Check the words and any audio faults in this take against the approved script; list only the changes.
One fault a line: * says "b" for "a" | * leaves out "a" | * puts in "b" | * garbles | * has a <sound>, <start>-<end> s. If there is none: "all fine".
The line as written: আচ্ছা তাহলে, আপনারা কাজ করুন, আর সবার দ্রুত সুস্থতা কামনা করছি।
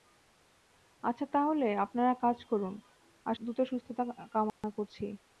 * leaves out "সবার"
* has a dropout, 4.5-4.6 s